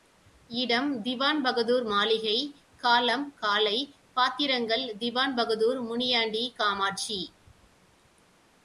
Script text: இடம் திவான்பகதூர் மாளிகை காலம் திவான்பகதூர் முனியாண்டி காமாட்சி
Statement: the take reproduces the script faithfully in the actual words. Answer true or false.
false